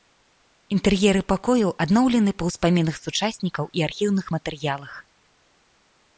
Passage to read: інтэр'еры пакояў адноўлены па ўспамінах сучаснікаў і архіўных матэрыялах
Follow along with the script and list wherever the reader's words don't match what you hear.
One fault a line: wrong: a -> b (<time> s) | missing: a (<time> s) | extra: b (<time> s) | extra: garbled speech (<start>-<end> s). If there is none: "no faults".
no faults